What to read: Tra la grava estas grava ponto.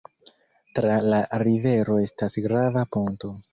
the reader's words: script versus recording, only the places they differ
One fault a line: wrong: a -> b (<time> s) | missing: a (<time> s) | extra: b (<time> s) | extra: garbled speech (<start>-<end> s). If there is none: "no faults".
wrong: grava -> rivero (1.4 s)